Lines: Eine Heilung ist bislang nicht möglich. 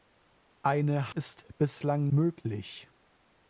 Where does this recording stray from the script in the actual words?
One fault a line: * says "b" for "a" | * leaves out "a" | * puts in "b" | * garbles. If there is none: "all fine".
* leaves out "Heilung"
* leaves out "nicht"